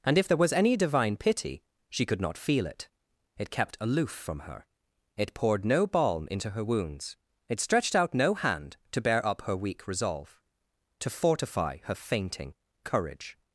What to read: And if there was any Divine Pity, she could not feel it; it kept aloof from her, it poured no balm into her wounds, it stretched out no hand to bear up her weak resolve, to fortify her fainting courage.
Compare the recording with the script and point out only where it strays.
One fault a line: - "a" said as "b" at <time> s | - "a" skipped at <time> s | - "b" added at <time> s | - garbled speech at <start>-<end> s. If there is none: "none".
none